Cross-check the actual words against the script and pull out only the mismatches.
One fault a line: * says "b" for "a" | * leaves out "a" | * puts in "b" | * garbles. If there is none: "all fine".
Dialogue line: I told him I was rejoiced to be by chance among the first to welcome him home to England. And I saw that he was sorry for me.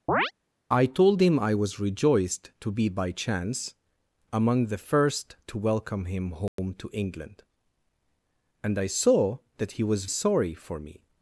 all fine